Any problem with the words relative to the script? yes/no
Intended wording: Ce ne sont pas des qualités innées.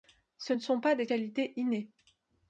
no